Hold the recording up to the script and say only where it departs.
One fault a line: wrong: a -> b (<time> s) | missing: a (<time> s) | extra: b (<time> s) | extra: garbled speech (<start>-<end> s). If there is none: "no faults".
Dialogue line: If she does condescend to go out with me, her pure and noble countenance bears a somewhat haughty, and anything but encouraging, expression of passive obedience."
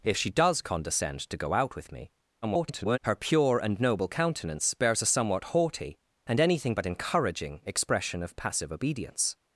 extra: garbled speech (2.4-3.0 s)